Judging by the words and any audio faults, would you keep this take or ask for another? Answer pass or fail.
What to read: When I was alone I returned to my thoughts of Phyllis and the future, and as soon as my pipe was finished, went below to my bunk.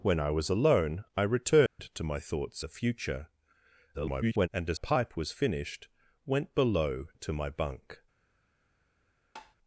fail